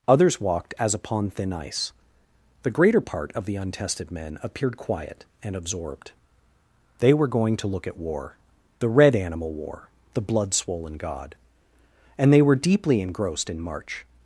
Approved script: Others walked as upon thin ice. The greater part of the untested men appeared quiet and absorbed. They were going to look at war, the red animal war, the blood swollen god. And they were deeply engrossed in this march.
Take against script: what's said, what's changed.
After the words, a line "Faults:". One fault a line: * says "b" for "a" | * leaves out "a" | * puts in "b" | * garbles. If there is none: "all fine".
Others walked as upon thin ice. The greater part of the untested men appeared quiet and absorbed. They were going to look at war, the red animal war, the blood swollen god. And they were deeply engrossed in march.
Faults:
* leaves out "this"